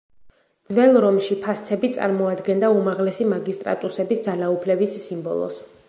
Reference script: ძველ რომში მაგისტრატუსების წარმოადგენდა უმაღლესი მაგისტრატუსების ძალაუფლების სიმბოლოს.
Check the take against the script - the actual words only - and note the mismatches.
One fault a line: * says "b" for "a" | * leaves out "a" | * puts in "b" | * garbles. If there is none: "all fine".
* says "ფასცები" for "მაგისტრატუსების"